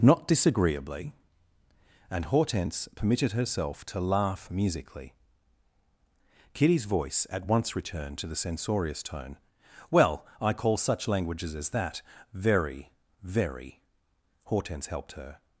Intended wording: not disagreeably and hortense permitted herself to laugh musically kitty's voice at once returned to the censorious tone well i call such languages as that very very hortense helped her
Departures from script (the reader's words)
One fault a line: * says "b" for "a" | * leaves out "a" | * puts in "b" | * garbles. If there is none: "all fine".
all fine